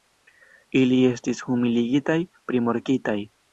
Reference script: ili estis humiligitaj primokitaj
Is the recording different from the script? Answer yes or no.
no